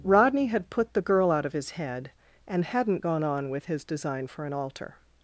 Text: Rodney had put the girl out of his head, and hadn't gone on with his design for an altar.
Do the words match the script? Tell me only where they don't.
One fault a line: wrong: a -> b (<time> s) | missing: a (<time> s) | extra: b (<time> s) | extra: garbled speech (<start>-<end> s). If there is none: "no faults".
no faults